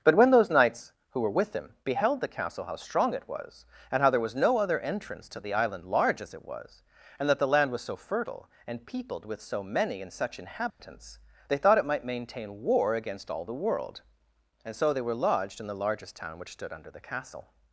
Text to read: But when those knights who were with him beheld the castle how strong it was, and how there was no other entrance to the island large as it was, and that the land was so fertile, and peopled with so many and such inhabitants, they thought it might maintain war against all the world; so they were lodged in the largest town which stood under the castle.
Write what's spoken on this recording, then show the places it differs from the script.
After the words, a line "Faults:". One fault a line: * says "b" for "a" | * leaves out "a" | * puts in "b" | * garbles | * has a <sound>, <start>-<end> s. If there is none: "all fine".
But when those knights who were with him beheld the castle how strong it was, and how there was no other entrance to the island large as it was, and that the land was so fertile, and peopled with so many and such inhabitants, they thought it might maintain war against all the world; and so they were lodged in the largest town which stood under the castle.
Faults:
* has a dropout, 10.7-10.8 s
* puts in "and"